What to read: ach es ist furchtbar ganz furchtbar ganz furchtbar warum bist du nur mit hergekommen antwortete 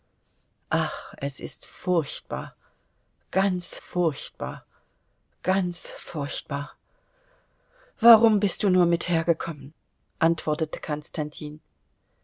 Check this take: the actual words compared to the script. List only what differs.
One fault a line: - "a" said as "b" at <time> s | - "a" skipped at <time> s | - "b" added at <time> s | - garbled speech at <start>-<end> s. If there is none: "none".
none